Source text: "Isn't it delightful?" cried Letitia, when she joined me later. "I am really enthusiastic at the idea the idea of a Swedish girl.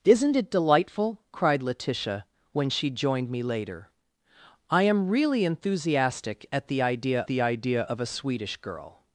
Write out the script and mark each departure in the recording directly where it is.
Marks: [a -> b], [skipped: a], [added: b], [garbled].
"Isn't it delightful?" cried Letitia, when she joined me later. "I am really enthusiastic at the idea the idea of a Swedish girl.